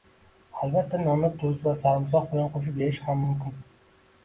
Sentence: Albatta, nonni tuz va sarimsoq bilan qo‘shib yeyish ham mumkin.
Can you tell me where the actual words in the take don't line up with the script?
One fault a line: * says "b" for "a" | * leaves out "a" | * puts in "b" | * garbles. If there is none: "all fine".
all fine